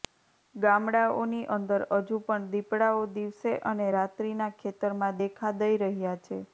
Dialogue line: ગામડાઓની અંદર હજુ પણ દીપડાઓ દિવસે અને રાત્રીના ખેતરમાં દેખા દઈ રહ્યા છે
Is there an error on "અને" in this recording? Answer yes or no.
no